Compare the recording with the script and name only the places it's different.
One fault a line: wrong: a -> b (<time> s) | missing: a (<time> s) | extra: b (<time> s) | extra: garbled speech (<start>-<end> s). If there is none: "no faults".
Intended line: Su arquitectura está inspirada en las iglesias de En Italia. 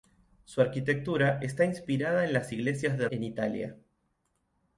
no faults